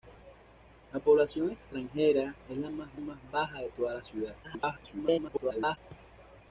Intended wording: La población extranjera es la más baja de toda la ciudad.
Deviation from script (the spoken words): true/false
true